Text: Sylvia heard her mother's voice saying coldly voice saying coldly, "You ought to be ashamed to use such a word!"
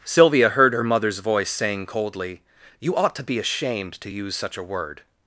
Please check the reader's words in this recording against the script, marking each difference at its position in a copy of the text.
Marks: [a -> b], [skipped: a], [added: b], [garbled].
Sylvia heard her mother's voice saying coldly [skipped: voice saying coldly,] "You ought to be ashamed to use such a word!"